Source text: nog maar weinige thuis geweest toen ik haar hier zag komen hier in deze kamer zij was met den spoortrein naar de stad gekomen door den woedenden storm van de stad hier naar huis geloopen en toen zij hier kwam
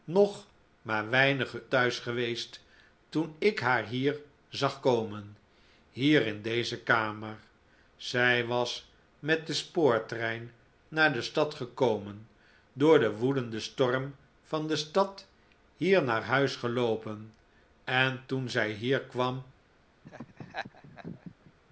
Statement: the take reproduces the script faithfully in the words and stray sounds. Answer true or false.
false